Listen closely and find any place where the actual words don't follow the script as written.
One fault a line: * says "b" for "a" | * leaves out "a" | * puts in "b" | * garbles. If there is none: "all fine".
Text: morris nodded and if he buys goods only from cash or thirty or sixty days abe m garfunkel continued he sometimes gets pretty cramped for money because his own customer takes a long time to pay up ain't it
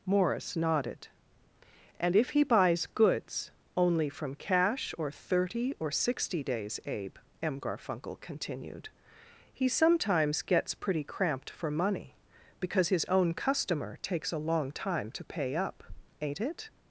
all fine